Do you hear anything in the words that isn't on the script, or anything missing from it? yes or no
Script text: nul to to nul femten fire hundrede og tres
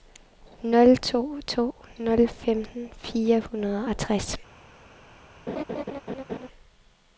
no